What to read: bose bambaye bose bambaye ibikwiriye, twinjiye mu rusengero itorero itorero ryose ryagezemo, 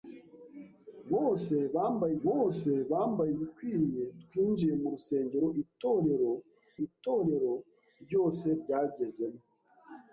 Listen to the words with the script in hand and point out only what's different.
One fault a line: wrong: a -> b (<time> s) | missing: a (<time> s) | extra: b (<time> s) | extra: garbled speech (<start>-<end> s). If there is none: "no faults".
no faults